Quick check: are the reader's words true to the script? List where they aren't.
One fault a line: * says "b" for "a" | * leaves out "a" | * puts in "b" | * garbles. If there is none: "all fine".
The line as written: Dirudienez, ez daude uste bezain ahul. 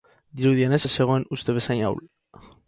* says "zegoen" for "daude"